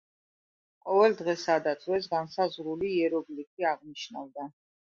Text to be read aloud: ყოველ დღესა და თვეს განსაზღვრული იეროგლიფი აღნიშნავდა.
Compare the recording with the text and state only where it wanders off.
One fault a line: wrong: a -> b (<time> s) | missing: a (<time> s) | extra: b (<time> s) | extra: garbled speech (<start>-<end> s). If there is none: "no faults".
no faults